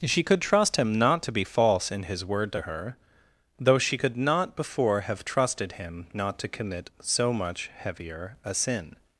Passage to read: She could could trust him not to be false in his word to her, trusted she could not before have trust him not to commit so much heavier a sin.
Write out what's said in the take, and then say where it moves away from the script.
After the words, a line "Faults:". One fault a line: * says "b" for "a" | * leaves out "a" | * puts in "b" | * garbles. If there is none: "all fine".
She could trust him not to be false in his word to her, though she could not before have trusted him not to commit so much heavier a sin.
Faults:
* leaves out "could"
* says "though" for "trusted"
* says "trusted" for "trust"